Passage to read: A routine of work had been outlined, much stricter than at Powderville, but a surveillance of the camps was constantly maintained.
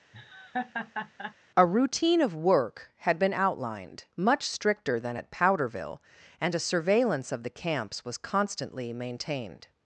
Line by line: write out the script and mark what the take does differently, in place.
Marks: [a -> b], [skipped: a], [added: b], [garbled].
A routine of work had been outlined, much stricter than at Powderville, [but -> and] a surveillance of the camps was constantly maintained.